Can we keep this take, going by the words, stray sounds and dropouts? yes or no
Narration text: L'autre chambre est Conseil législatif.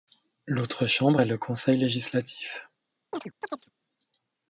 no